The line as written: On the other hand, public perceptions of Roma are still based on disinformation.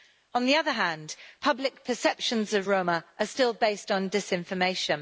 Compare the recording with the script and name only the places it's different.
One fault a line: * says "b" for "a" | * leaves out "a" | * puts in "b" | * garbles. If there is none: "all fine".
all fine